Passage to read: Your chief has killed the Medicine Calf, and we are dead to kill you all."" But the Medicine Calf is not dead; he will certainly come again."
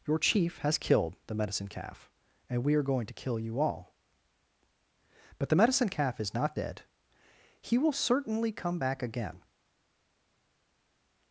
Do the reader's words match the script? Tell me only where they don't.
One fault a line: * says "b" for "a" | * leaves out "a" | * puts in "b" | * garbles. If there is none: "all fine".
* says "going" for "dead"
* puts in "back"